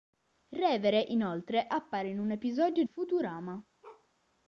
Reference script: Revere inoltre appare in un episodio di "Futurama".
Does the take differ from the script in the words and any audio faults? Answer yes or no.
yes